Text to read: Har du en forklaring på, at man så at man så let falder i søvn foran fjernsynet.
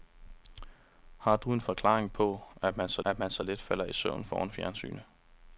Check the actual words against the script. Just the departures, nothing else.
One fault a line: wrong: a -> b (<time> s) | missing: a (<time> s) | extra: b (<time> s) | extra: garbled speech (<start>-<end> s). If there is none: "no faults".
no faults